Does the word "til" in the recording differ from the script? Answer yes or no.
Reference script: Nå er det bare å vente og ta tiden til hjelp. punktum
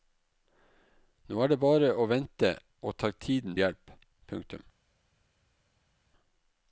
yes